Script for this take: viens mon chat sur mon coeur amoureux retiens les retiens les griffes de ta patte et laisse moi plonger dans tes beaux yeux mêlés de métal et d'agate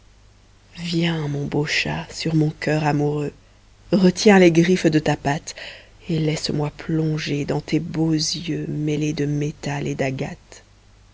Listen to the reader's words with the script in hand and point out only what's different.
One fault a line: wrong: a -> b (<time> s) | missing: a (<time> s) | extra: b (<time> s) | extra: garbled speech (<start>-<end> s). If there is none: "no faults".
extra: beau (1.4 s)
missing: retiens les (4.5 s)